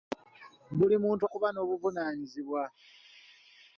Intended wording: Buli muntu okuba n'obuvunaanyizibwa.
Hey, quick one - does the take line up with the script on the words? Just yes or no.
yes